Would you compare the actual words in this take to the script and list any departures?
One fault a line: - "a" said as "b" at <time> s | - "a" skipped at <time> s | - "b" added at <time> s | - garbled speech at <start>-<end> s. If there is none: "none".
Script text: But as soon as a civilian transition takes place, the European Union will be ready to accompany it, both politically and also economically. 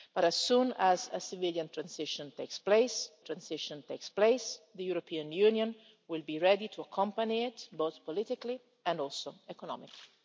- "transition takes place" added at 3.2 s